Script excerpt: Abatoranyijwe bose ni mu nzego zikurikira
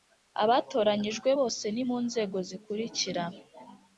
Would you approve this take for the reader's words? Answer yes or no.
yes